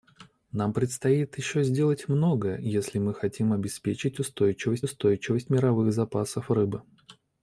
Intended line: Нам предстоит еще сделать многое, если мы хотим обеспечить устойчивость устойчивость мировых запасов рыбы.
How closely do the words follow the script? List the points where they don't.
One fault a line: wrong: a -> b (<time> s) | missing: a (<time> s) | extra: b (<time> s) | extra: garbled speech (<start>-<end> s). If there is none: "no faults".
no faults